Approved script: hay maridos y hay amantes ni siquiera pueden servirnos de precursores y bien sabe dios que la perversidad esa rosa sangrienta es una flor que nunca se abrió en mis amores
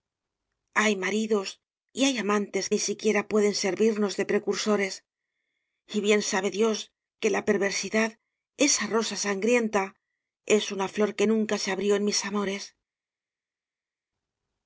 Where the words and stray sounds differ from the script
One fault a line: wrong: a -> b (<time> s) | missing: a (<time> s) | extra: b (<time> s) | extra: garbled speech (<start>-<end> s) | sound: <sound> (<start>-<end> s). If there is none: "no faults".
no faults